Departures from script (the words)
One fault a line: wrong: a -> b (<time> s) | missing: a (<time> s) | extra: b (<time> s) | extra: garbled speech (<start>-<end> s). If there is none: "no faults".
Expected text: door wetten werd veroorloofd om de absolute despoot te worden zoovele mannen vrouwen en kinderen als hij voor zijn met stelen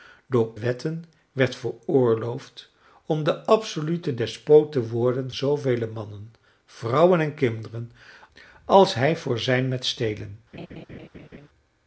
no faults